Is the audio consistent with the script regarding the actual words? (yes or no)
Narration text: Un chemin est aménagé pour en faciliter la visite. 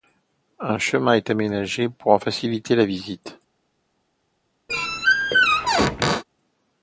yes